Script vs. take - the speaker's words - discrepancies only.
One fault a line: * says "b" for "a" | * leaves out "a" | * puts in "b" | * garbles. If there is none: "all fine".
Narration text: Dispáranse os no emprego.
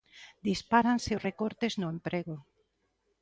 * puts in "recortes"